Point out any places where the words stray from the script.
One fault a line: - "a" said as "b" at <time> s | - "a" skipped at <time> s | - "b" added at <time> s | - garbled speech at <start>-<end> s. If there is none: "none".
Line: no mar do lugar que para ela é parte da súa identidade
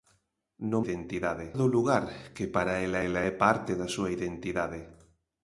- "mar" said as "identidade" at 0.8 s
- "ela" added at 3.1 s